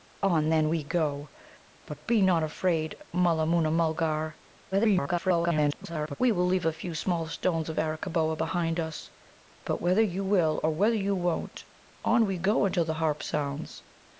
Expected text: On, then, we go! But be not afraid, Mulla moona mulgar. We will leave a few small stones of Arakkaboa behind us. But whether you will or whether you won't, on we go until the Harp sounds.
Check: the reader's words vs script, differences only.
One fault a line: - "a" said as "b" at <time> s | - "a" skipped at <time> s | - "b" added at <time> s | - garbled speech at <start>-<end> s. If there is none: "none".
- garbled speech at 4.7-6.2 s